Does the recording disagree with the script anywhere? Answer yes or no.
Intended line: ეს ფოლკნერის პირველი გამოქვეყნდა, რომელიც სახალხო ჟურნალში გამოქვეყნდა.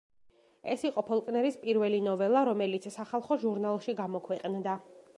yes